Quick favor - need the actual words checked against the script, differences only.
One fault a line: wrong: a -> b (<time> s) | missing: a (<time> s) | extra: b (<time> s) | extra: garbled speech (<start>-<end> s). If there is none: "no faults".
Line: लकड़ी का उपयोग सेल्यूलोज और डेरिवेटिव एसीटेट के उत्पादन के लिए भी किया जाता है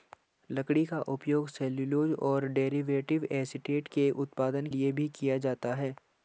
missing: के (4.7 s)